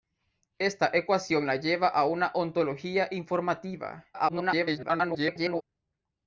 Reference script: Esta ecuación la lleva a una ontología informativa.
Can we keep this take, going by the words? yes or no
no